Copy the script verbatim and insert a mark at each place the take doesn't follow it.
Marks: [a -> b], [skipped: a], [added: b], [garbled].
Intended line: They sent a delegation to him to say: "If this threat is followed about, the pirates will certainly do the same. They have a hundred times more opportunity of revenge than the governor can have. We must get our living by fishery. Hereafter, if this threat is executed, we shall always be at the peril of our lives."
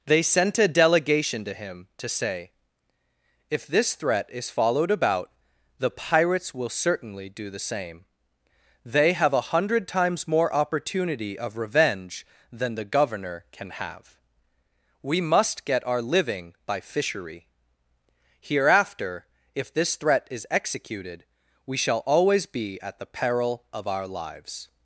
They sent a delegation to him to say: "If this threat is followed about, the pirates will certainly do the same. They have a hundred times more opportunity of revenge than the governor can have. We must get our living by fishery. Hereafter, if this threat is executed, we shall always be at the peril of our lives."